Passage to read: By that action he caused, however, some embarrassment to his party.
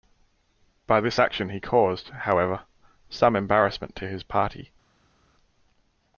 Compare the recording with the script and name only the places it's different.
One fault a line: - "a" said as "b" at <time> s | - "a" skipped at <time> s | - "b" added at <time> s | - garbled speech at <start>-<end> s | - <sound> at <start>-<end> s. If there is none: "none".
- "that" said as "this" at 1.0 s